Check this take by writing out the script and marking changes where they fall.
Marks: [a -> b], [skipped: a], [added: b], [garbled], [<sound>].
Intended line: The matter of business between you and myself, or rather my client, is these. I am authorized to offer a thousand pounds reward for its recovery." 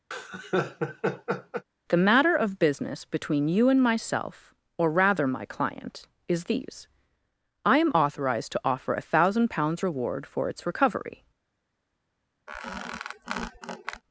[laugh] The matter of business between you and myself, or rather my client, is these. I am authorized to offer a thousand pounds reward for its recovery." [squeak]